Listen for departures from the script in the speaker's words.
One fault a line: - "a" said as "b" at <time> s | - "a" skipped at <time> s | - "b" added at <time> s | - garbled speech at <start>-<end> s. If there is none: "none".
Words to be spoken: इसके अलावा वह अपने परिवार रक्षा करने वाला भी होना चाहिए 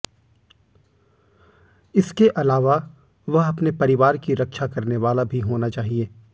- "की" added at 4.2 s